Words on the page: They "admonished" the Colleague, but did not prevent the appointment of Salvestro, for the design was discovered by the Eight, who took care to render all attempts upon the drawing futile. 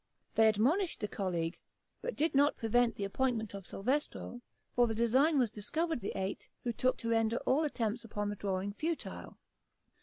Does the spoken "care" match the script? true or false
false